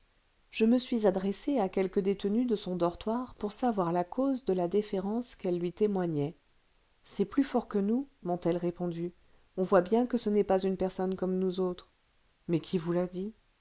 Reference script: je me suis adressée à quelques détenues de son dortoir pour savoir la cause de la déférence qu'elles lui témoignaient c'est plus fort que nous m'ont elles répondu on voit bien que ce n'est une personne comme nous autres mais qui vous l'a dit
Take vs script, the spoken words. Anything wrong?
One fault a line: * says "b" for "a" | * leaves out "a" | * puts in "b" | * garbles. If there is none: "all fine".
* puts in "pas"